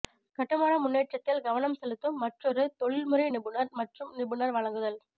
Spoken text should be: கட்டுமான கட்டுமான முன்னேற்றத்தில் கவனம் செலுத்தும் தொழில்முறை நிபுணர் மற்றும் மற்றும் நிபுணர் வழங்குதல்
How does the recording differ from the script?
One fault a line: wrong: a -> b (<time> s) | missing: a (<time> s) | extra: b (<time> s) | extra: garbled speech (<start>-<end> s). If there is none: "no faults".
missing: கட்டுமான (0.7 s)
extra: மற்றொரு (2.2 s)
missing: மற்றும் (4.1 s)